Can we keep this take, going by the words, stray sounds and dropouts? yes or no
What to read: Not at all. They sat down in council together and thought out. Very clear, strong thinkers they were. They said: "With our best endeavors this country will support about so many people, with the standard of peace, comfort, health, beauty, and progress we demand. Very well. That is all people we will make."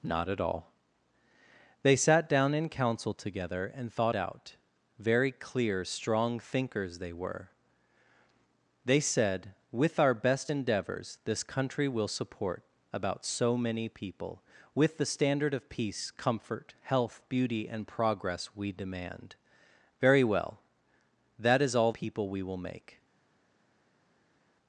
yes